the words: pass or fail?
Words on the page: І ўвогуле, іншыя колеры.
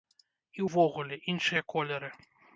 pass